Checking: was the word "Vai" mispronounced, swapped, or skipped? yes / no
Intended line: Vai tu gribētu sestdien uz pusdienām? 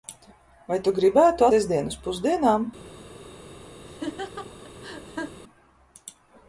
no